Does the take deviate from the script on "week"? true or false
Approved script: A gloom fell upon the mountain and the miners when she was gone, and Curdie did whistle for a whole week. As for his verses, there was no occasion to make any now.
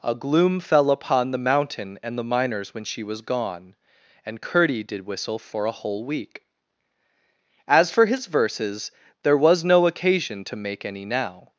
false